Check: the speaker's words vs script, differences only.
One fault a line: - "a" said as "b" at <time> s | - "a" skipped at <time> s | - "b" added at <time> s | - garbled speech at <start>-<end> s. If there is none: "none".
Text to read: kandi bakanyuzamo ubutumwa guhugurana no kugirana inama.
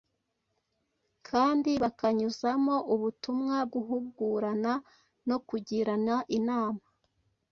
none